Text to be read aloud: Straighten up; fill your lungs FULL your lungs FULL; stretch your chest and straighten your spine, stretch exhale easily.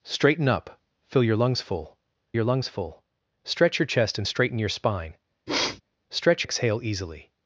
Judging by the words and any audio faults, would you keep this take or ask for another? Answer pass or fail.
fail